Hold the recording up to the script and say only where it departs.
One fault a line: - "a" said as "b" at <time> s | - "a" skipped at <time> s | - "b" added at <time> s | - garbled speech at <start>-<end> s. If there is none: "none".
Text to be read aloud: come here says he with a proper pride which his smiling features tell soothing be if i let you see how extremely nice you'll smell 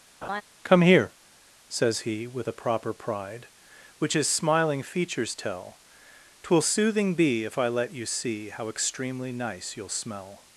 - "twill" added at 6.4 s